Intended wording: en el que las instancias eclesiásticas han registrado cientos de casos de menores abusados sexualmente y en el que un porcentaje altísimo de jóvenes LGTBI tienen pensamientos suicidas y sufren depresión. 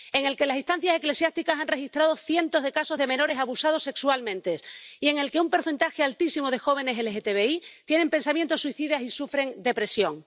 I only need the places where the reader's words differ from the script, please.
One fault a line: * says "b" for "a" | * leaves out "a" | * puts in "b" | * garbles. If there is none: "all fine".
all fine